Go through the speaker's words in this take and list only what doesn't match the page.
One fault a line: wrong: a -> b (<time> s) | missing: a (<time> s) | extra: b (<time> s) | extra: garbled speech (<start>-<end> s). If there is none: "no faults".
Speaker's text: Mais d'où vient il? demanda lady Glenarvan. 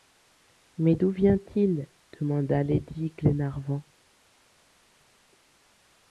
no faults